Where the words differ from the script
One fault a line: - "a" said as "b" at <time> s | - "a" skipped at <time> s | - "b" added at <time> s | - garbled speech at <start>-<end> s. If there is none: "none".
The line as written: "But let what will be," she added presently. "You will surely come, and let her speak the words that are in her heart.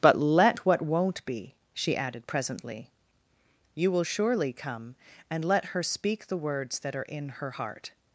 - "will" said as "won't" at 0.8 s